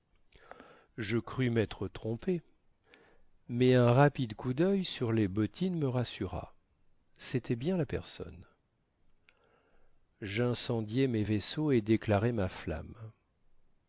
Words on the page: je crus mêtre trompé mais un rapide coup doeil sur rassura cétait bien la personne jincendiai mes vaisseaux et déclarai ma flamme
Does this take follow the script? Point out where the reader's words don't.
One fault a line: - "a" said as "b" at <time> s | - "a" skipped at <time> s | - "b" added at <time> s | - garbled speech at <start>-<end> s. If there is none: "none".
- "les bottines me" added at 5.1 s